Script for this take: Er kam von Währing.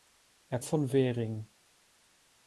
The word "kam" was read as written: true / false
false